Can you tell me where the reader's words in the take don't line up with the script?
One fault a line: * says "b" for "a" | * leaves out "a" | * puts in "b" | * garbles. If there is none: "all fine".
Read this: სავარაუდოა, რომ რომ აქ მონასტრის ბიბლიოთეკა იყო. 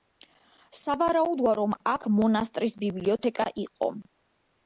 * leaves out "რომ"